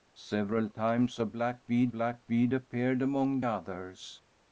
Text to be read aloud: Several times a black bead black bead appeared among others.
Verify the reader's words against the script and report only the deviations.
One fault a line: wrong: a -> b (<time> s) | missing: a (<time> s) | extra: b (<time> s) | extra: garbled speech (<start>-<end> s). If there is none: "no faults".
no faults